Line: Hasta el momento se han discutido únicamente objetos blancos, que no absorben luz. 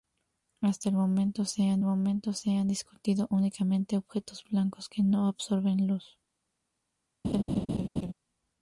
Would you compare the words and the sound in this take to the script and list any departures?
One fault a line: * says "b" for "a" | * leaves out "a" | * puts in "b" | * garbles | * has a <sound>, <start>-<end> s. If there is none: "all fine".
* puts in "momento se han"
* has a laugh, 7.2-8.1 s